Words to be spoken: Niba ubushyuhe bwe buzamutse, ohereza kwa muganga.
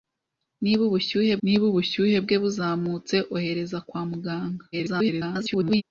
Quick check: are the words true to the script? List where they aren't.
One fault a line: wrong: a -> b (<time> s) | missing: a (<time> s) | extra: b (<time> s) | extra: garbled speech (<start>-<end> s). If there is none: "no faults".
extra: niba ubushyuhe (1.4 s)
extra: garbled speech (4.7-5.8 s)